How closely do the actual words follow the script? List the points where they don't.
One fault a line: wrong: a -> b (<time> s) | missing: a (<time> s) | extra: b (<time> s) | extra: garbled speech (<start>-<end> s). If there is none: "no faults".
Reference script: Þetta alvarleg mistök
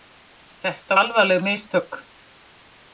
no faults